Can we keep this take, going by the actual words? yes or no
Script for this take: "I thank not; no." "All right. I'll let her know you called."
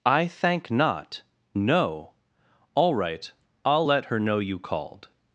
yes